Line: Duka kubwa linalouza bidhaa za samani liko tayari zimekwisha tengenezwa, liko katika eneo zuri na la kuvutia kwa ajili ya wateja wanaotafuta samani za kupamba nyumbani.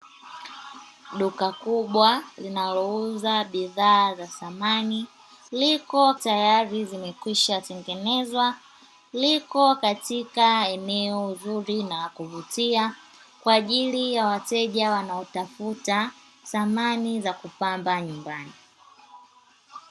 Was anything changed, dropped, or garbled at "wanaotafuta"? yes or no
no